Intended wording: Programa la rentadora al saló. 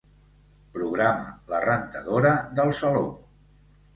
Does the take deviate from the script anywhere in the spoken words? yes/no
yes